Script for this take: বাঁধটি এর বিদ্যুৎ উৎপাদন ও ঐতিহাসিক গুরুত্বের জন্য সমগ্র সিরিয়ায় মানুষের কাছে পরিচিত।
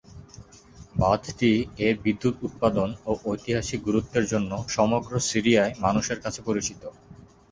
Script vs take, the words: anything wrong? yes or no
no